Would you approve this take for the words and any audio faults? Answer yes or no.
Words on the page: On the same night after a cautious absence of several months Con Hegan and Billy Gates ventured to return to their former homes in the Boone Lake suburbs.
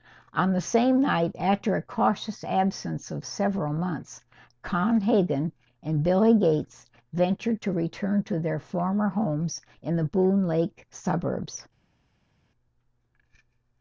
yes